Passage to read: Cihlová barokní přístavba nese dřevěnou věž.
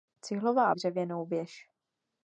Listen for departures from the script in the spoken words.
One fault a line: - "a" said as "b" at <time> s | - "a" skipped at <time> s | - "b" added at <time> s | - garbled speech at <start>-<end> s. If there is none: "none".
- "barokní přístavba nese" skipped at 0.8 s